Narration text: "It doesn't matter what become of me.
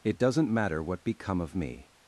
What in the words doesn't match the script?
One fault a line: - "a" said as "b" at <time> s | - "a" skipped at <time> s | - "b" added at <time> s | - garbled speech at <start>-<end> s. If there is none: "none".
none